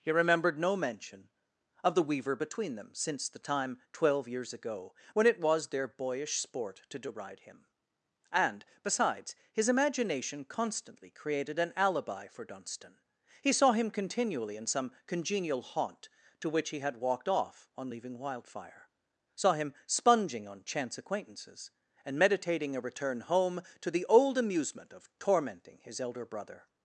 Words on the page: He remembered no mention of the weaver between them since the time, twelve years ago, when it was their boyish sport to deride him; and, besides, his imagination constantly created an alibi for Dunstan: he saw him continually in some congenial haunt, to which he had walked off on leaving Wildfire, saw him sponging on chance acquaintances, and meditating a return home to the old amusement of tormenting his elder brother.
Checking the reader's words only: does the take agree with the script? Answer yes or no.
yes